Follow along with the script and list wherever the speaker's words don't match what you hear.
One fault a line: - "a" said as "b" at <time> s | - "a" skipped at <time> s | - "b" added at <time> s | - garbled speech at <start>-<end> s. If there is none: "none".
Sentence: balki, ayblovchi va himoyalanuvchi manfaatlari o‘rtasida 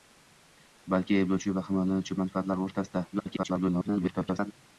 - garbled speech at 3.1-4.5 s